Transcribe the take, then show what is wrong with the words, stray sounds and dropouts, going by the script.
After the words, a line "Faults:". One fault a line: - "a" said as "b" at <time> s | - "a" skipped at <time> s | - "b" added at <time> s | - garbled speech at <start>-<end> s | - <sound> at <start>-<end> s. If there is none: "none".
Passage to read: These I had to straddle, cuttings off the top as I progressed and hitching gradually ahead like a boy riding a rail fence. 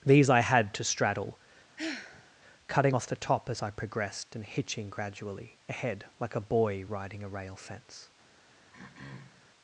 These I had to straddle, cutting off the top as I progressed and hitching gradually ahead like a boy riding a rail fence.
Faults:
- sigh at 1.8-2.4 s
- "cuttings" said as "cutting" at 2.7 s
- throat clearing at 8.7-9.5 s